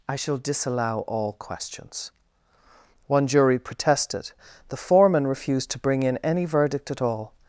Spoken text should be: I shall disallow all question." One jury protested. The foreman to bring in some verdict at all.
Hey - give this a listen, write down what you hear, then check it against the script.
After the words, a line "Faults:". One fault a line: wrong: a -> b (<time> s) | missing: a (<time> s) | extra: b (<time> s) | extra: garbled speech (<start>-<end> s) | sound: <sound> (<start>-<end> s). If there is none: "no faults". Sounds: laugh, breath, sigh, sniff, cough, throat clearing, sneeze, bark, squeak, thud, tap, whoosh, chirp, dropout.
I shall disallow all questions." One jury protested. The foreman refused to bring in any verdict at all.
Faults:
wrong: question -> questions (1.3 s)
extra: refused (5.3 s)
wrong: some -> any (6.2 s)